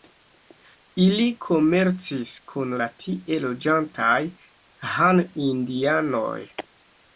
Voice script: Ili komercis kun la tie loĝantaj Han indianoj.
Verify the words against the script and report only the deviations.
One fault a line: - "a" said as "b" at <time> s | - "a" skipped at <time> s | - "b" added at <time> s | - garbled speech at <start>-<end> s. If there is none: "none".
none